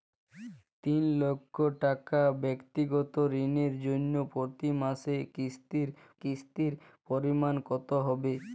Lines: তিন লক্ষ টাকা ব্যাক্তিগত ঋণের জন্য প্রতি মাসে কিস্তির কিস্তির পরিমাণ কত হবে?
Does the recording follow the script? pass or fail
pass